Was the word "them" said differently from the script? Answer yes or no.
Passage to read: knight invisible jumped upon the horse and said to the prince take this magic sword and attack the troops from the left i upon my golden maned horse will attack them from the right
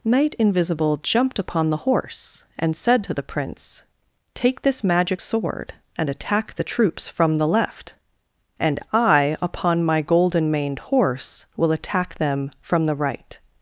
no